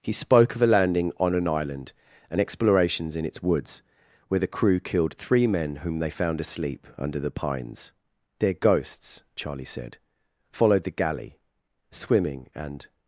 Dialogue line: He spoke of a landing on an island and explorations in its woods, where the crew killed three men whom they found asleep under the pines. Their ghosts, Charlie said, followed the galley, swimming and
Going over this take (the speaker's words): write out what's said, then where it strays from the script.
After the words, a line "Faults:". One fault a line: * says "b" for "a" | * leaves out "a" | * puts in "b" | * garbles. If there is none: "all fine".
He spoke of a landing on an island and explorations in its woods, where the crew killed three men whom they found asleep under the pines. Their ghosts, Charlie said, followed the galley, swimming and
Faults:
all fine